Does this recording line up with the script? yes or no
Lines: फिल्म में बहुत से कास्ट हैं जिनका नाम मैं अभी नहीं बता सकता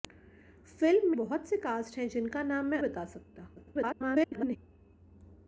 no